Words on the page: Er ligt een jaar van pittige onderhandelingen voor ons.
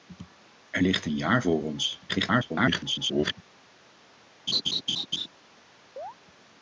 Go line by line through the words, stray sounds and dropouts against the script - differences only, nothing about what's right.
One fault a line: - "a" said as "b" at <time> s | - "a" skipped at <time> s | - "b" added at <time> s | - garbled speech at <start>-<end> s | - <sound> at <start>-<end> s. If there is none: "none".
- "van pittige onderhandelingen" skipped at 1.4 s
- garbled speech at 2.1-3.3 s
- laugh at 4.5-5.3 s
- chirp at 6.0-6.2 s